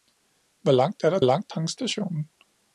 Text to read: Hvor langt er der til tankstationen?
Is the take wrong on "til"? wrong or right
wrong